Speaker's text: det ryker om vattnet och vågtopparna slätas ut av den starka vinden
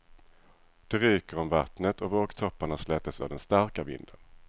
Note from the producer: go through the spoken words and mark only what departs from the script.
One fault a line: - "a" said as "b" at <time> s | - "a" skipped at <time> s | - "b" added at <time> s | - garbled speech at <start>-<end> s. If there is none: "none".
- "ut" skipped at 3.2 s